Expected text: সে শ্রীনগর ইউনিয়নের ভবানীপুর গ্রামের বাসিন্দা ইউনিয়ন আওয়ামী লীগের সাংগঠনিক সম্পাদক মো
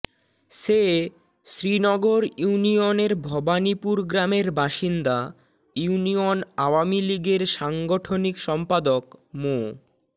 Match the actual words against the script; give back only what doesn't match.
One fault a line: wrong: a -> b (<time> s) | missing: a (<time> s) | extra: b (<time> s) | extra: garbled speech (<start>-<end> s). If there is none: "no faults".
no faults